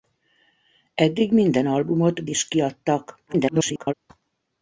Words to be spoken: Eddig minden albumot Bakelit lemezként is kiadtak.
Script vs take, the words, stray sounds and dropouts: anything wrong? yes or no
yes